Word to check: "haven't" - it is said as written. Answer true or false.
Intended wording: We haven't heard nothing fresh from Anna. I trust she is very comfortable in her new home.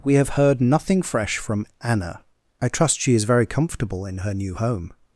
false